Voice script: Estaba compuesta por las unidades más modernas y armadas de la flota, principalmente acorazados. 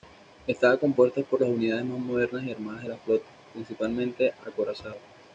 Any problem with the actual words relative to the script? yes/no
no